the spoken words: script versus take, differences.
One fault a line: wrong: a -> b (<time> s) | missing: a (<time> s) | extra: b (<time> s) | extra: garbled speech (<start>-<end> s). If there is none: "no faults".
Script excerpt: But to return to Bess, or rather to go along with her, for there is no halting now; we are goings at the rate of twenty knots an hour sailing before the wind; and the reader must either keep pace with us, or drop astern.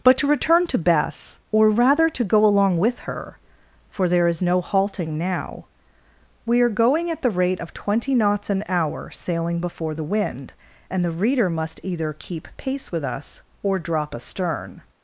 wrong: goings -> going (6.7 s)